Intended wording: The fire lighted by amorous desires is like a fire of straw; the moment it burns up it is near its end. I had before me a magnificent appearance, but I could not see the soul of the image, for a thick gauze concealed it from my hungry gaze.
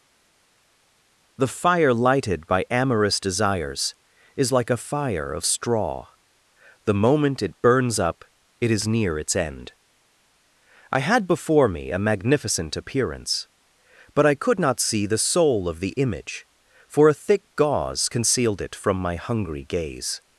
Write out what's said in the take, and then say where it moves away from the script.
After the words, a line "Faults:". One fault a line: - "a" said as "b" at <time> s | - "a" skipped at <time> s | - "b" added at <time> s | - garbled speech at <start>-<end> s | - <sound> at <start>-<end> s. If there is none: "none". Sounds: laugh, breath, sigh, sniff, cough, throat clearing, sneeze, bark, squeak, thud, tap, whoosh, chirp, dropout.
The fire lighted by amorous desires is like a fire of straw; the moment it burns up it is near its end. I had before me a magnificent appearance, but I could not see the soul of the image, for a thick gauze concealed it from my hungry gaze.
Faults:
none